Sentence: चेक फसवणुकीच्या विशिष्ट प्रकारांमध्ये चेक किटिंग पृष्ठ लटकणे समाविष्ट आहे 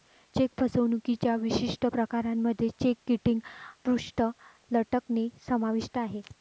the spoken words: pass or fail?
pass